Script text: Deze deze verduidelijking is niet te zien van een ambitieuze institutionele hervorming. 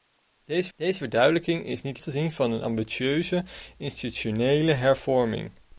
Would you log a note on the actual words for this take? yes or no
no